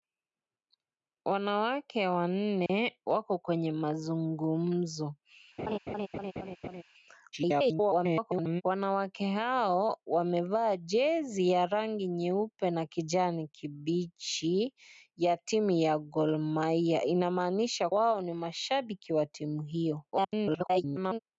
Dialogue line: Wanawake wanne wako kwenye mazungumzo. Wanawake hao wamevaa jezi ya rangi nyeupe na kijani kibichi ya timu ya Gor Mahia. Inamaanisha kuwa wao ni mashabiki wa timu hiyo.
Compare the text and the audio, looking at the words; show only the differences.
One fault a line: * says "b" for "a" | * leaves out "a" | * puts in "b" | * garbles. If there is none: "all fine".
* garbles
* leaves out "kuwa"
* garbles